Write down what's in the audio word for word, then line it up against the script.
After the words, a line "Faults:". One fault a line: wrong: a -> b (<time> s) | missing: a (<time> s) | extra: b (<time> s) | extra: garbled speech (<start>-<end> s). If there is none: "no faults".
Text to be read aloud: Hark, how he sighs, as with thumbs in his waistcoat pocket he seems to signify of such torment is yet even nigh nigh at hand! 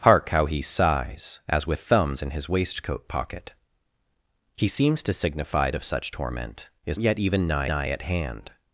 Hark, how he sighs, as with thumbs in his waistcoat pocket he seems to signify of such torment is yet even nigh nigh at hand!
Faults:
no faults